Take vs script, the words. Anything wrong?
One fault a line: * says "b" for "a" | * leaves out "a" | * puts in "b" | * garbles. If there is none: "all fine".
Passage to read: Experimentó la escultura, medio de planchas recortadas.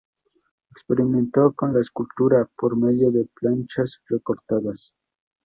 * puts in "con"
* puts in "por"